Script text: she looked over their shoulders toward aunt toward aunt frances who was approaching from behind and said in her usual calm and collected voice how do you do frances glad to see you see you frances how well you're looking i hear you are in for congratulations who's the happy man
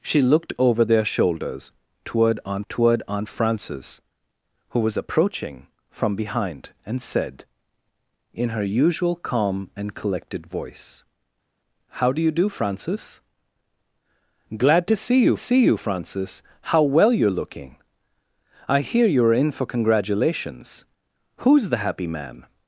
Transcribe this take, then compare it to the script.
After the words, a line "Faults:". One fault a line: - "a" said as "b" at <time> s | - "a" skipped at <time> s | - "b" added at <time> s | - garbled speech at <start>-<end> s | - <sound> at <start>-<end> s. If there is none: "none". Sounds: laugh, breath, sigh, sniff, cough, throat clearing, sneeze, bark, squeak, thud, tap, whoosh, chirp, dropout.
she looked over their shoulders toward aunt toward aunt frances who was approaching from behind and said in her usual calm and collected voice how do you do frances glad to see you see you frances how well you're looking i hear you are in for congratulations who's the happy man
Faults:
none